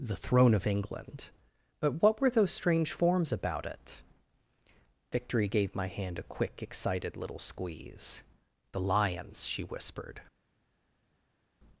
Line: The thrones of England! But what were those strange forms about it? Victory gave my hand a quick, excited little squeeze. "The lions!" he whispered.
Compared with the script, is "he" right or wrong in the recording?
wrong